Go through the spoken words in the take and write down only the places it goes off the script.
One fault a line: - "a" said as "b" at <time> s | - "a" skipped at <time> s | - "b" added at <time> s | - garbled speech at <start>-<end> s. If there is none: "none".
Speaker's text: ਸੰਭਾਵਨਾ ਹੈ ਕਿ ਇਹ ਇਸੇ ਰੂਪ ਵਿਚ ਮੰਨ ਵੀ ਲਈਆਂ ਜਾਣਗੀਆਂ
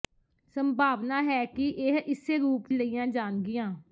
- "ਵਿਚ ਮੰਨ ਵੀ" skipped at 2.7 s